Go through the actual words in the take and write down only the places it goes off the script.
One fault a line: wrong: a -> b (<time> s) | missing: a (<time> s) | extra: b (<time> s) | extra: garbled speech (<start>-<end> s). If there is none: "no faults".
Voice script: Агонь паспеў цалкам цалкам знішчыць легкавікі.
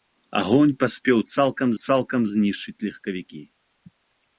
no faults